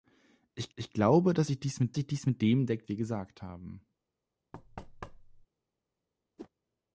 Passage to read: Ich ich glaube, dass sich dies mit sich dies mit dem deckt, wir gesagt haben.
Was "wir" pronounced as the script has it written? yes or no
yes